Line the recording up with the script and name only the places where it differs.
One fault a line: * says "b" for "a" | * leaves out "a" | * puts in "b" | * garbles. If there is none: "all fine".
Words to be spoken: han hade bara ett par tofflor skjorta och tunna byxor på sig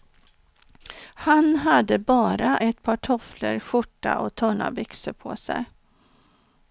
all fine